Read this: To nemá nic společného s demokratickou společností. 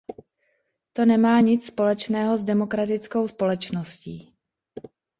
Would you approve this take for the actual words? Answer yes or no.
yes